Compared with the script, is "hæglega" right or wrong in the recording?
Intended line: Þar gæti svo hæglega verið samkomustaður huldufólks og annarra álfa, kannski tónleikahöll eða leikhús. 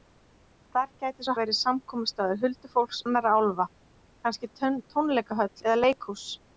wrong